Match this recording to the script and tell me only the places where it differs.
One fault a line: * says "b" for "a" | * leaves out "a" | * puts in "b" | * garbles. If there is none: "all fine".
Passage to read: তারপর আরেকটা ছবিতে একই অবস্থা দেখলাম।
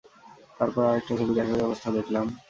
all fine